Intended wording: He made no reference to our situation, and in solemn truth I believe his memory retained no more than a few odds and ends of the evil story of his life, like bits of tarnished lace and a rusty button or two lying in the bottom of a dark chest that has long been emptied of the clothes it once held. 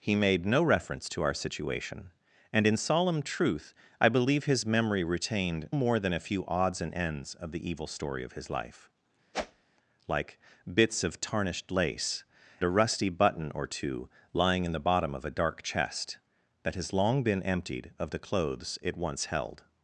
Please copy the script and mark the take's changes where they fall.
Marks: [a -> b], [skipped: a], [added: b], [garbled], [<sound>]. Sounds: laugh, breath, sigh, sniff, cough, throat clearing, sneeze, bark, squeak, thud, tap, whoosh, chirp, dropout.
He made no reference to our situation, and in solemn truth I believe his memory retained [skipped: no] more than a few odds and ends of the evil story of his life, [whoosh] like bits of tarnished lace [skipped: and] a rusty button or two lying in the bottom of a dark chest that has long been emptied of the clothes it once held.